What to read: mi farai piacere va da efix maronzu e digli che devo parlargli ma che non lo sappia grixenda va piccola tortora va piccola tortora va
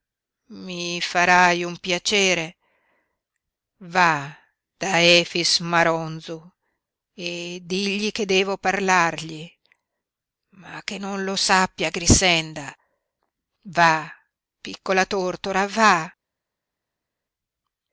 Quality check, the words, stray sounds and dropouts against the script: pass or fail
fail